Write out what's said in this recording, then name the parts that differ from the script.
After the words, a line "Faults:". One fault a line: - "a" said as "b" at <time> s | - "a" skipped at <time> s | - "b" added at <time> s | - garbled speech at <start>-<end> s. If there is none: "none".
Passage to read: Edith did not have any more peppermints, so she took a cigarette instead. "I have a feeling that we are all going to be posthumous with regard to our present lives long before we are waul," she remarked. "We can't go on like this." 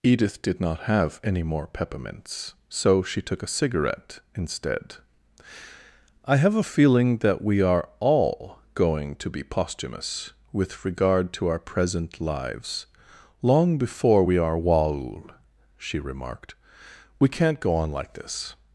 Edith did not have any more peppermints, so she took a cigarette instead. "I have a feeling that we are all going to be posthumous with regard to our present lives long before we are waul," she remarked. "We can't go on like this."
Faults:
none